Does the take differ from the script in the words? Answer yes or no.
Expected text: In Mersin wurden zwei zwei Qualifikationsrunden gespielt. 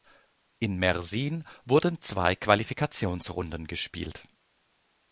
yes